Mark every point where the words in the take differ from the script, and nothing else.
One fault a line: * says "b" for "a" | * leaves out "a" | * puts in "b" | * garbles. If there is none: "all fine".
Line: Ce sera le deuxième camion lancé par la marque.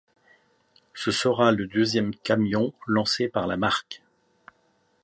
all fine